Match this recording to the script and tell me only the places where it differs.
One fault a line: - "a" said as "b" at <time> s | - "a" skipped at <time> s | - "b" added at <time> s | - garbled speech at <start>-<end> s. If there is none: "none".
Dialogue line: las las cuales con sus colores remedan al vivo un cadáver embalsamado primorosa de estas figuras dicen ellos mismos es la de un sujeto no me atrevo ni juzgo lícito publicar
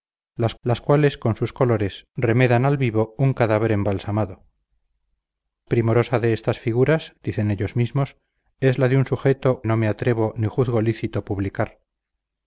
none